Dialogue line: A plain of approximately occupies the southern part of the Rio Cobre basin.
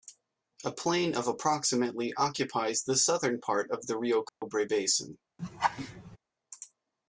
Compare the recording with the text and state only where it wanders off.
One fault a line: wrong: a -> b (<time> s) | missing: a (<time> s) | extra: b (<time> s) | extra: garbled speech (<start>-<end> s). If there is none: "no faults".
no faults